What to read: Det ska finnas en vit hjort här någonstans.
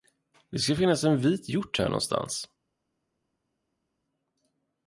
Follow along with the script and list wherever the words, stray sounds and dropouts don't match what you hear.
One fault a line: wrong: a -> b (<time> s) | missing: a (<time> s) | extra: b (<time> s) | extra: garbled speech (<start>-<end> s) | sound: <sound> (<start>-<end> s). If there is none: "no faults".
no faults